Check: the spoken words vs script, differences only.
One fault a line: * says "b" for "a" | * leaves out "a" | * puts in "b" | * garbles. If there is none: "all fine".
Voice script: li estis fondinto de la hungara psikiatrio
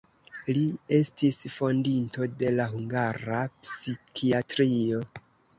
all fine